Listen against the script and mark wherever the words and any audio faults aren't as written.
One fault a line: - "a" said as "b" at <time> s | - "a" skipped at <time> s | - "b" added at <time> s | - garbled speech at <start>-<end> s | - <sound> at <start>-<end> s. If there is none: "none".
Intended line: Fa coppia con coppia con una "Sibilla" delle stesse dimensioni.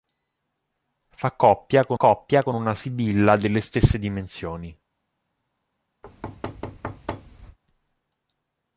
- thud at 6.0-7.6 s